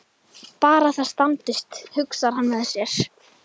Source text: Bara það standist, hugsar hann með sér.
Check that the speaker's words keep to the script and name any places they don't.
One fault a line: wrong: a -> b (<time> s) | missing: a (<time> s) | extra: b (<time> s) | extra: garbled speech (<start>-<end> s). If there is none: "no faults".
no faults